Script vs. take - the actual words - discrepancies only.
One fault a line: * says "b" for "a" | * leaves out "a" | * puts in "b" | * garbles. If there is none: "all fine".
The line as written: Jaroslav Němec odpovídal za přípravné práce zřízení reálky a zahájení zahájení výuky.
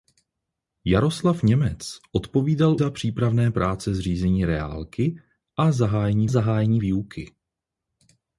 all fine